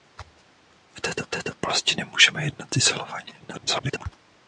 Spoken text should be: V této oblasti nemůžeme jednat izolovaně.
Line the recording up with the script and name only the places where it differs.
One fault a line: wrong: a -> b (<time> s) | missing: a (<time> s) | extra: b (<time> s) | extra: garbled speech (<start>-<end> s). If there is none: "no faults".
extra: této (1.3 s)
extra: garbled speech (3.4-4.1 s)